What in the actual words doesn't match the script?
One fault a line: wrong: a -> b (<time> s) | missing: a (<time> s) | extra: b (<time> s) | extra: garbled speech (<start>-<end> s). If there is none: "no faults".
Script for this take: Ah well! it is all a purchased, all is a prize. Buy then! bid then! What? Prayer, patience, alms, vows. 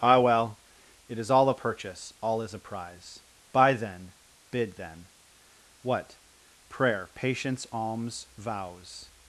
wrong: purchased -> purchase (1.5 s)